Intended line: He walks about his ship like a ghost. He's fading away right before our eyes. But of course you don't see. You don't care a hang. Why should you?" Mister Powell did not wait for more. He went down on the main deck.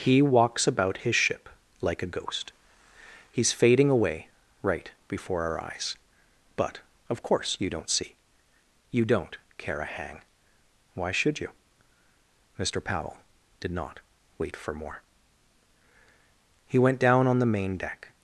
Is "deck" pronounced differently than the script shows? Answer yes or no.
no